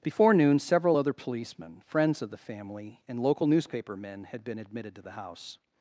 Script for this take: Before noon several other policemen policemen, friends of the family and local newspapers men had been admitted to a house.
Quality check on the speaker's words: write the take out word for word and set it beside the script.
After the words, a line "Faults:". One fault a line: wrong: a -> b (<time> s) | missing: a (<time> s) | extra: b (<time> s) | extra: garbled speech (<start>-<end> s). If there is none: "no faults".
Before noon several other policemen, friends of the family and local newspaper men had been admitted to the house.
Faults:
missing: policemen (1.8 s)
wrong: newspapers -> newspaper (3.5 s)
wrong: a -> the (5.0 s)